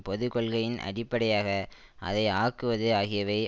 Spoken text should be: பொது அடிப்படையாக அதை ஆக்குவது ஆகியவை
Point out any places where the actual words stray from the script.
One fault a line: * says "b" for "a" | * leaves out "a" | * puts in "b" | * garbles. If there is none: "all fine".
* puts in "கொள்கையின்"